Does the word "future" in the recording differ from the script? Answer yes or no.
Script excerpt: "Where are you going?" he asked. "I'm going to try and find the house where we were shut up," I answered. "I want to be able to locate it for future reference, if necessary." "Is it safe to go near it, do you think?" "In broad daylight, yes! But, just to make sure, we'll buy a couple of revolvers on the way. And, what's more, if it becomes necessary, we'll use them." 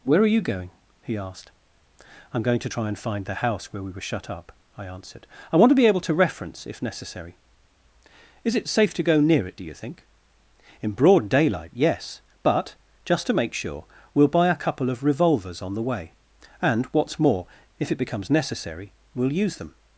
yes